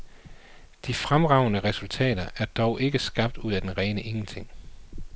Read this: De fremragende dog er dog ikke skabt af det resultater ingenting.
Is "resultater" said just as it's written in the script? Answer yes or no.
no